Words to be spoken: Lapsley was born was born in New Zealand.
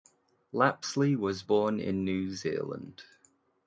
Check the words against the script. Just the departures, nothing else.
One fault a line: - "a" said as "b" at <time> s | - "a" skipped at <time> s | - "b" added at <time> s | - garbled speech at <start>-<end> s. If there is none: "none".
- "was born" skipped at 1.8 s